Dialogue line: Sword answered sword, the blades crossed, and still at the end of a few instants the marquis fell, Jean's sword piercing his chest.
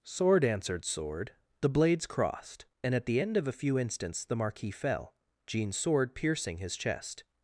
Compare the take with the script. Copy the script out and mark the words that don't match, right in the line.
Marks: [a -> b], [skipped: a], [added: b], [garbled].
Sword answered sword, the blades crossed, and [skipped: still] at the end of a few instants the marquis fell, Jean's sword piercing his chest.